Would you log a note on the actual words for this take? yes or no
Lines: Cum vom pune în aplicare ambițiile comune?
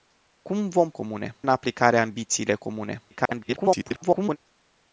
yes